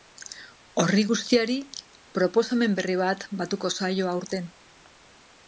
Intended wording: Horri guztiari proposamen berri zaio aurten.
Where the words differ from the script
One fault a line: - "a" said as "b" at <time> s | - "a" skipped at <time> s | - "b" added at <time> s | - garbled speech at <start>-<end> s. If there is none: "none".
- "bat batuko" added at 3.0 s